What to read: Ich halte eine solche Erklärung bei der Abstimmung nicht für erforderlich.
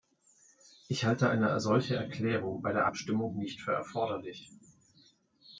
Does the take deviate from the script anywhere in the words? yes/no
no